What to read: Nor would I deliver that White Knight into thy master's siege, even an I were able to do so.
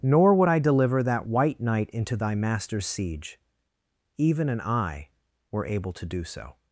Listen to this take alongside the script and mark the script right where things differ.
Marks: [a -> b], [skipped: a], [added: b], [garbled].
Nor would I deliver that White Knight into thy master's siege, even an I were able to do so.